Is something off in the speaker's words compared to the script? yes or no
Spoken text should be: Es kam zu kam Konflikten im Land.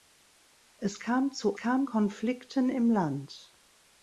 no